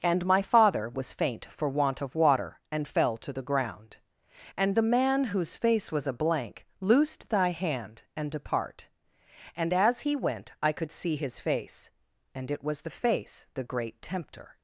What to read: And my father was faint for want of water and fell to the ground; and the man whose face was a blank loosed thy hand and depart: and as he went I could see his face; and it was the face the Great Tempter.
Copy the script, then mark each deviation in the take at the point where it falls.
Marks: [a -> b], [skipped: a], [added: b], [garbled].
And my father was faint for want of water and fell to the ground; and the man whose face was a blank loosed thy hand and depart: and as he went I could see his face; and it was the face the Great Tempter.